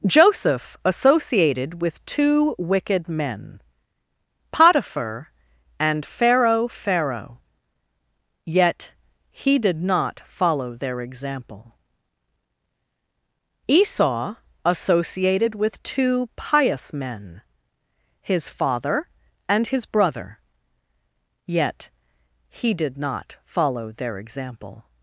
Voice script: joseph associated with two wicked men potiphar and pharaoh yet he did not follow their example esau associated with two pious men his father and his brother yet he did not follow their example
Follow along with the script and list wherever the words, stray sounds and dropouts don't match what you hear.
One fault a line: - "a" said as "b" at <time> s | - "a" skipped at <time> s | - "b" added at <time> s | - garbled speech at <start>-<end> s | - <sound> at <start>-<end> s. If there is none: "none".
- "pharaoh" added at 6.7 s